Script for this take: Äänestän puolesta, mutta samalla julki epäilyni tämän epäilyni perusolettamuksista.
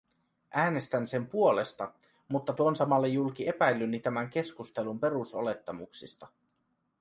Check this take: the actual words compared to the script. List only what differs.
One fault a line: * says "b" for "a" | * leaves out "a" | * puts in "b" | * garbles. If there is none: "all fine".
* puts in "sen"
* puts in "tuon"
* says "keskustelun" for "epäilyni"